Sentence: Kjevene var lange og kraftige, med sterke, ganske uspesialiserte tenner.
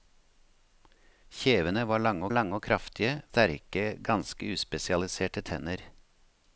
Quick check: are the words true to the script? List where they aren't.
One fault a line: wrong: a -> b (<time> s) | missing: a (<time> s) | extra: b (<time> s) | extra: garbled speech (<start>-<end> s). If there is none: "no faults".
extra: lange (2.3 s)
missing: med (3.2 s)